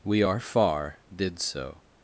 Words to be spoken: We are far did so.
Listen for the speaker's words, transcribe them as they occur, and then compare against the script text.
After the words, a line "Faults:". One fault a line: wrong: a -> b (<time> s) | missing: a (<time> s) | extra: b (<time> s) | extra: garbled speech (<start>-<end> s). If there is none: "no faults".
We are far did so.
Faults:
no faults